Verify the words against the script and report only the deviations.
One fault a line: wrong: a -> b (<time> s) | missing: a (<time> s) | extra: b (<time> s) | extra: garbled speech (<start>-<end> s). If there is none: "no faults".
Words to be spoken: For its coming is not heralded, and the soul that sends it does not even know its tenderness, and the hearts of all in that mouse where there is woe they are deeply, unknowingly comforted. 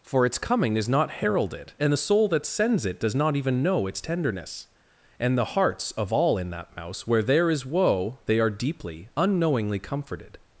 no faults